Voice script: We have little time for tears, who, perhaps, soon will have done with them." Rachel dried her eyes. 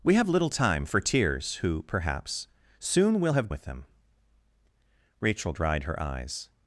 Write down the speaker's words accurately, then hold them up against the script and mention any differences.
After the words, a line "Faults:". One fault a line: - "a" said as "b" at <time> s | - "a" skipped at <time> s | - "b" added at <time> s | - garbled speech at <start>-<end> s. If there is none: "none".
We have little time for tears, who, perhaps, soon will have with them." Rachel dried her eyes.
Faults:
- "done" skipped at 3.5 s